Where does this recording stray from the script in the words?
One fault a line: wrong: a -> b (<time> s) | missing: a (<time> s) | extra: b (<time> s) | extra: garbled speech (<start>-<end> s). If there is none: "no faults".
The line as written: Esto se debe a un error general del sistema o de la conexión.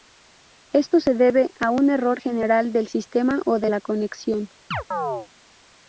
no faults